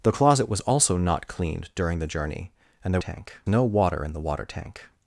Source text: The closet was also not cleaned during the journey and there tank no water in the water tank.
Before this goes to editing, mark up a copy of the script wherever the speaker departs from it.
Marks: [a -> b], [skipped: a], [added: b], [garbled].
The closet was also not cleaned during the journey and there tank no water in the water tank.